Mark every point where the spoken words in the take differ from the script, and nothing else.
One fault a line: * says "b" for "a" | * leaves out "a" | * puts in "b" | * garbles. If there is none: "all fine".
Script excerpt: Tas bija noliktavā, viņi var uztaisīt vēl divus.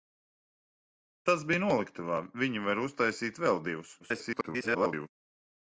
* garbles